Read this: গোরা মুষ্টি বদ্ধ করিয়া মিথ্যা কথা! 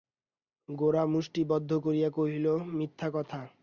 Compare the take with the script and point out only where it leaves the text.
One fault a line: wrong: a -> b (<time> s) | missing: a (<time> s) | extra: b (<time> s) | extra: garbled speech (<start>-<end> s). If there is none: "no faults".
extra: কহিল (2.1 s)